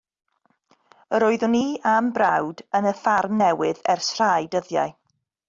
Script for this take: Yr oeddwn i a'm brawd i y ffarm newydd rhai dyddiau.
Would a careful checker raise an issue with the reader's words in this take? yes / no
yes